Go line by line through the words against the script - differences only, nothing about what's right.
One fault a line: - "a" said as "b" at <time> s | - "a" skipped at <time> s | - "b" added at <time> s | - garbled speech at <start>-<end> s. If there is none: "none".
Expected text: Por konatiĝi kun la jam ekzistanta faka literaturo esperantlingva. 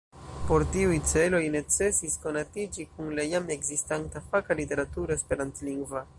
- "tiuj celoj necesis" added at 0.8 s